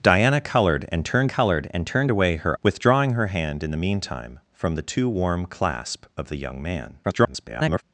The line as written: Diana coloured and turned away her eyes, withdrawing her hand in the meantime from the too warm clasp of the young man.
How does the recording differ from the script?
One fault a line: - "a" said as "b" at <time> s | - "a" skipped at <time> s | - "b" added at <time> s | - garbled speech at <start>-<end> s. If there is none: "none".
- "coloured and turned" added at 1.3 s
- "eyes" skipped at 2.6 s
- garbled speech at 7.0-7.8 s